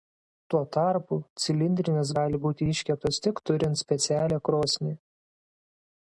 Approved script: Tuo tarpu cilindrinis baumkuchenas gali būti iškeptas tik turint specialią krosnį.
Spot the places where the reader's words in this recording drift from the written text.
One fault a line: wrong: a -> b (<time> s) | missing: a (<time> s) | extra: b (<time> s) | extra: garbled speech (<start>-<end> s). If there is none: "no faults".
missing: baumkuchenas (2.1 s)